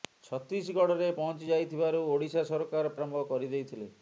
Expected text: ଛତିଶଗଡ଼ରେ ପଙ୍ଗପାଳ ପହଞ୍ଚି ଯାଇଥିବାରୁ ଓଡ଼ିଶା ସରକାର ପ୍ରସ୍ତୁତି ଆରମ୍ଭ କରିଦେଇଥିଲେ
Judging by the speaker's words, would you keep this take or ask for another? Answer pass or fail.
fail